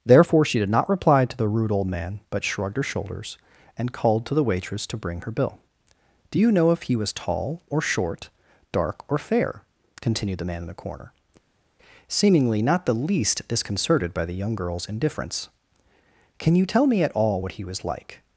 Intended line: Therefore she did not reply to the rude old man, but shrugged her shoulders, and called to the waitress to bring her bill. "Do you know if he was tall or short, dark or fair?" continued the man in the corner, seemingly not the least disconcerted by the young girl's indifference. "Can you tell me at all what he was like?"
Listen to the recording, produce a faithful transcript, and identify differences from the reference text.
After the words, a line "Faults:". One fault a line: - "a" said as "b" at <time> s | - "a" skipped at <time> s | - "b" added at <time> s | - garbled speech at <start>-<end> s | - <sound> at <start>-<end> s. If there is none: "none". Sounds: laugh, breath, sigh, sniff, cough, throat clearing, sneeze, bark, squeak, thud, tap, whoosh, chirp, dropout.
Therefore she did not reply to the rude old man, but shrugged her shoulders, and called to the waitress to bring her bill. "Do you know if he was tall or short, dark or fair?" continued the man in the corner, seemingly not the least disconcerted by the young girl's indifference. "Can you tell me at all what he was like?"
Faults:
none